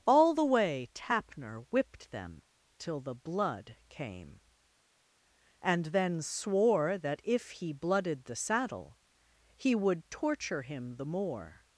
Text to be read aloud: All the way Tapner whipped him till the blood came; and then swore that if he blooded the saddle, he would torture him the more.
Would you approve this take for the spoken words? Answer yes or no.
no